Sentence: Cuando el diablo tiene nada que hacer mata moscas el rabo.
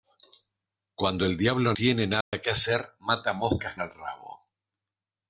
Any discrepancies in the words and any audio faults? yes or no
yes